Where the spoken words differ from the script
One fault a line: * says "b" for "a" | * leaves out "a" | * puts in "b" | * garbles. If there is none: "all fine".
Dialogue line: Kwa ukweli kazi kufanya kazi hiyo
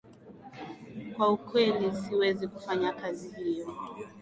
* says "siwezi" for "kazi"